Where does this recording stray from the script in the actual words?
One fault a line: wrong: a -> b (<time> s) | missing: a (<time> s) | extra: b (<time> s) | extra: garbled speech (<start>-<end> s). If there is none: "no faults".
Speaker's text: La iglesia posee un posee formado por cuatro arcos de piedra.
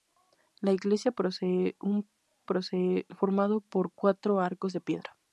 no faults